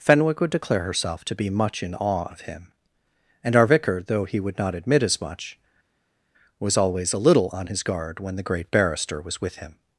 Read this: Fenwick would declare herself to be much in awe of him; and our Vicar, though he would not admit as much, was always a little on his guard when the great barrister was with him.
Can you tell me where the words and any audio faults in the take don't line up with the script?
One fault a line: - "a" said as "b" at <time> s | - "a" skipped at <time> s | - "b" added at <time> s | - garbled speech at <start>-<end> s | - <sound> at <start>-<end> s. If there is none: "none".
none